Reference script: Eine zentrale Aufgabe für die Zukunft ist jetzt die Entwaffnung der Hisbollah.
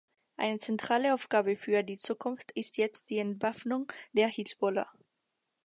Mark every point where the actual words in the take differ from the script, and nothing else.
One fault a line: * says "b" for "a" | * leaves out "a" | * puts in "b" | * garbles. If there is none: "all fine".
all fine